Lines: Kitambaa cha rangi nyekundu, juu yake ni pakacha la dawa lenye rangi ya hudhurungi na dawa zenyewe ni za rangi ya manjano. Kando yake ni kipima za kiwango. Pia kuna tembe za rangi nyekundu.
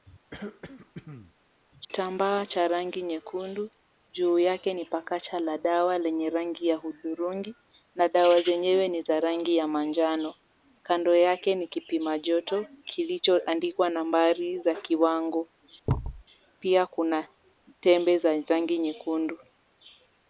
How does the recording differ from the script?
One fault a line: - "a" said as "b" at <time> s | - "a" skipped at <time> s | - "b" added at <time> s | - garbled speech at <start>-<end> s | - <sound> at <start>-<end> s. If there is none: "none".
- throat clearing at 0.3-1.3 s
- "joto kilichoandikwa nambari" added at 12.2 s
- thud at 15.9-16.2 s